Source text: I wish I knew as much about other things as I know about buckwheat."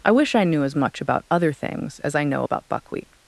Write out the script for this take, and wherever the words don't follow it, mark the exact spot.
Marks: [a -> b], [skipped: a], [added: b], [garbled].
I wish I knew as much about other things as I know about buckwheat."